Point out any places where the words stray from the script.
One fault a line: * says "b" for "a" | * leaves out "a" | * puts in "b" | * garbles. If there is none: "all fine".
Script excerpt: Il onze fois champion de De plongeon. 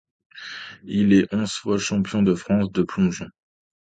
* puts in "est"
* puts in "France"